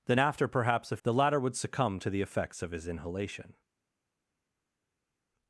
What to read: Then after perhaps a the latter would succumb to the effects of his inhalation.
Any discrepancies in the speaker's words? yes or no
no